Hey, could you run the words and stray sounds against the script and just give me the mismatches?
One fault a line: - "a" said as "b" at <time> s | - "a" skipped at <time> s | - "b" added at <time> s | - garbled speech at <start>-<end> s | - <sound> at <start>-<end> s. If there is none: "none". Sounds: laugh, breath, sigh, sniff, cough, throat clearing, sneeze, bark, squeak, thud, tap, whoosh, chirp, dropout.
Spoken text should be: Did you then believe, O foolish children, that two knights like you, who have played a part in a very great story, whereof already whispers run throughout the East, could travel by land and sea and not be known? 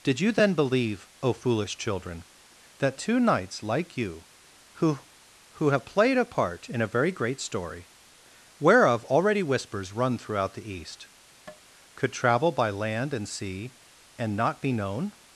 - "who" added at 5.5 s
- tap at 11.5-11.6 s